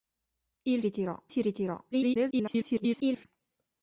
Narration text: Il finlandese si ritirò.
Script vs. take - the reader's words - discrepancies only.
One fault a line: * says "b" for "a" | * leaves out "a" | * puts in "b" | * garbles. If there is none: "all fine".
* says "ritirò" for "finlandese"
* garbles